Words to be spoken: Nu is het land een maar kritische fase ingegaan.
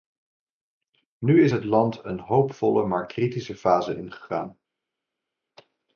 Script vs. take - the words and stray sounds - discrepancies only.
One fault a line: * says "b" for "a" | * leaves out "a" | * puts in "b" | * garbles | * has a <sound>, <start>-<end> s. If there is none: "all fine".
* puts in "hoopvolle"